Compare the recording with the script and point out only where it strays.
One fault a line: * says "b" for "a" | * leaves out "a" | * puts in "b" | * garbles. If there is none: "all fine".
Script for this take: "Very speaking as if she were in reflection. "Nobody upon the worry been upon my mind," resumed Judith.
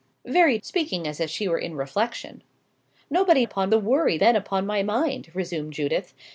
all fine